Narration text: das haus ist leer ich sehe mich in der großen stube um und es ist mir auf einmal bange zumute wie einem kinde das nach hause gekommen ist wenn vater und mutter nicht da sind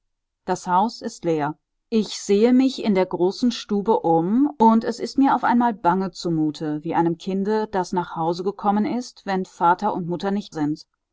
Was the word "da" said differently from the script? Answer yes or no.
yes